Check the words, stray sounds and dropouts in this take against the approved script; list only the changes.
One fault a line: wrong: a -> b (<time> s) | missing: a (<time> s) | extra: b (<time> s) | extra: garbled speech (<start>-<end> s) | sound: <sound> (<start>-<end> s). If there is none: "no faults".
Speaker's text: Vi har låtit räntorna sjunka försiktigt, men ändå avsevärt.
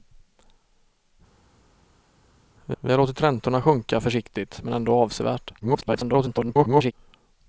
extra: vi (2.8 s)
extra: garbled speech (5.6-6.9 s)